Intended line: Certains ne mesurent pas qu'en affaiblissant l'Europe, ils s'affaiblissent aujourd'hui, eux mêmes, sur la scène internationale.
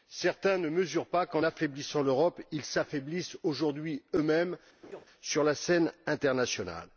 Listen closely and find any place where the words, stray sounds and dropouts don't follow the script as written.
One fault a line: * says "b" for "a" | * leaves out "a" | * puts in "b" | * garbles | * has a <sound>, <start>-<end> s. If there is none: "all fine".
* has a laugh, 4.8-5.1 s